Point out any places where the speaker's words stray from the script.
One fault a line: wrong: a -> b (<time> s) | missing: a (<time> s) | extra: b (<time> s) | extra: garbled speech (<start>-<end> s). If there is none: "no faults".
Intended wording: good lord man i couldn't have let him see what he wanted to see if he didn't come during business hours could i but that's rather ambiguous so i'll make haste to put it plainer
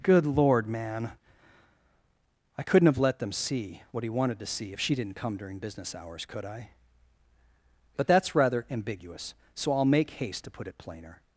wrong: him -> them (3.2 s)
wrong: he -> she (4.8 s)